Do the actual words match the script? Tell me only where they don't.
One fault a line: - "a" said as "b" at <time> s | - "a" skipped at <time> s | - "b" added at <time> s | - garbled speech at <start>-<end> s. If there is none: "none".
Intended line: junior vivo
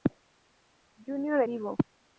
none